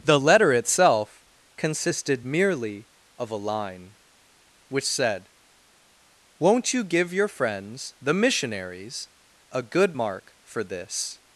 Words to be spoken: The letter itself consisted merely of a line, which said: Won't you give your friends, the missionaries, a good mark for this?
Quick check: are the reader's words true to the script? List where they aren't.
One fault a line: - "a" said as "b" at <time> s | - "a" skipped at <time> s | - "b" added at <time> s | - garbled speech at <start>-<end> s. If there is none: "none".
none